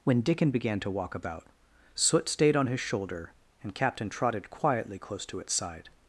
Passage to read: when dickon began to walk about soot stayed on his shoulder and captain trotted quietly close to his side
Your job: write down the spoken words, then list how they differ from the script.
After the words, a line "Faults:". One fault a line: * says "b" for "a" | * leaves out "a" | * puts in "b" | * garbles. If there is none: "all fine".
when dickon began to walk about soot stayed on his shoulder and captain trotted quietly close to its side
Faults:
* says "its" for "his"